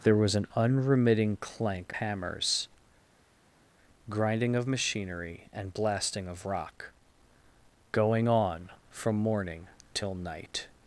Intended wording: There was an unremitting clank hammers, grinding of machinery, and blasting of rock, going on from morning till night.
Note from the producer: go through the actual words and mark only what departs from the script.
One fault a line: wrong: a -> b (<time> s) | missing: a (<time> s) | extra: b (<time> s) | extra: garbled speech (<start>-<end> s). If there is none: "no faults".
no faults